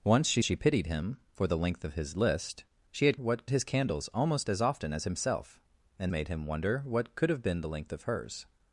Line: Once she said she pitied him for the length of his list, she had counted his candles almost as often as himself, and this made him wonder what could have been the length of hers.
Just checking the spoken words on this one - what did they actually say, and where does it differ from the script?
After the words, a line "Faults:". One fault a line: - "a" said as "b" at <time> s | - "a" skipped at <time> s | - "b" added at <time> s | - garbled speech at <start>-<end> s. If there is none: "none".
Once she she pitied him for the length of his list, she had what his candles almost as often as himself, and made him wonder what could have been the length of hers.
Faults:
- "said" skipped at 0.4 s
- "counted" said as "what" at 3.2 s
- "this" skipped at 6.1 s